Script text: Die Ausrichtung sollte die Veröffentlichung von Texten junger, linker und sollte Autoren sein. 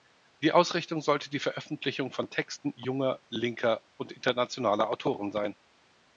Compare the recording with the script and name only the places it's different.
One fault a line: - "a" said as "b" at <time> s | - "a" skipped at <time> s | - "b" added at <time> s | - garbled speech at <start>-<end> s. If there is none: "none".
- "sollte" said as "internationaler" at 4.1 s